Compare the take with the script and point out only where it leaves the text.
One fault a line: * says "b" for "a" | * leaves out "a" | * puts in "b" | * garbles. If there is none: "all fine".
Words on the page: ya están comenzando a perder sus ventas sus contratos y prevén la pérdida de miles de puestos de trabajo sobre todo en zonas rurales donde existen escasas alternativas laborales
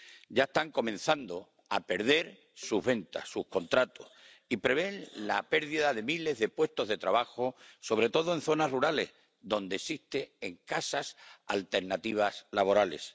all fine